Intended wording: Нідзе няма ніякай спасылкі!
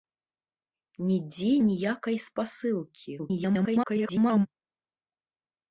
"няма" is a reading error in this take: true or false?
true